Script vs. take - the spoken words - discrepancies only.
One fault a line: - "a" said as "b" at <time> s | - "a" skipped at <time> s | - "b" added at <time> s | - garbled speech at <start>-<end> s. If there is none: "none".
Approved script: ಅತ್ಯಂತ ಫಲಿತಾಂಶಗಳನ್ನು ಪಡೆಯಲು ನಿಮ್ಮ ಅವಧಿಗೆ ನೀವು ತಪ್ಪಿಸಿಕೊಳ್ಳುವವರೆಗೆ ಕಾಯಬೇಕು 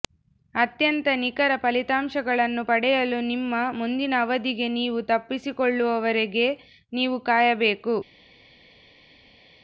- "ನಿಖರ" added at 1.1 s
- "ಮುಂದಿನ" added at 3.7 s
- "ನೀವು" added at 6.9 s